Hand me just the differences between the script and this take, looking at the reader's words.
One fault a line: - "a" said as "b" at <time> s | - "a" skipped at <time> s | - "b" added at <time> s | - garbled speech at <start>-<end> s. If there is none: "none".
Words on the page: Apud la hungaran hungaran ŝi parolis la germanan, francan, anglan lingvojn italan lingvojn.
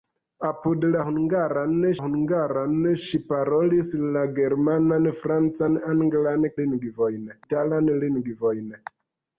none